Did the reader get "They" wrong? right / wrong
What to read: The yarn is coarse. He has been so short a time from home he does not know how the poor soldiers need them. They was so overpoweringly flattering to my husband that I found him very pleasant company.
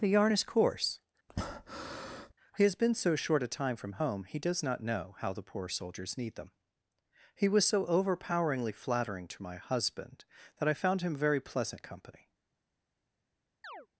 wrong